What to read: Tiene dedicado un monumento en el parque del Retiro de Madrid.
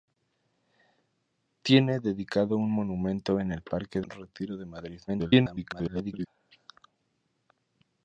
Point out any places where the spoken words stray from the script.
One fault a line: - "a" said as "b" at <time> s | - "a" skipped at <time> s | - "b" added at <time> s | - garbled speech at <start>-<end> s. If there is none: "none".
- "del" skipped at 4.0 s
- garbled speech at 5.1-6.3 s